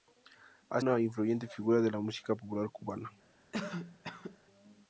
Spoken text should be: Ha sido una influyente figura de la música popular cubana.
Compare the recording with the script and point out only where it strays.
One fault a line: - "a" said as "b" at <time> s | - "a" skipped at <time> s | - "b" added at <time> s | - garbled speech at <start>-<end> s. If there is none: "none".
- "sido" skipped at 0.8 s